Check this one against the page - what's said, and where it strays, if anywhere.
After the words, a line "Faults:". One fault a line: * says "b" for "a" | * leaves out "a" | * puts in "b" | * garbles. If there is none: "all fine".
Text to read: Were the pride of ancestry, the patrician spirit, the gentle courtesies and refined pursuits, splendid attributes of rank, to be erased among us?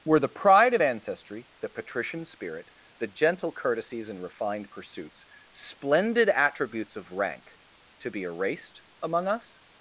Were the pride of ancestry, the patrician spirit, the gentle courtesies and refined pursuits, splendid attributes of rank, to be erased among us?
Faults:
all fine